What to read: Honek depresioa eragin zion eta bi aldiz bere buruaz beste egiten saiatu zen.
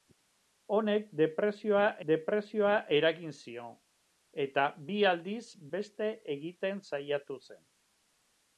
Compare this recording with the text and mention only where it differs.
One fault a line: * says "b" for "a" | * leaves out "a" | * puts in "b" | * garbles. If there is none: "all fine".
* puts in "depresioa"
* leaves out "bere buruaz"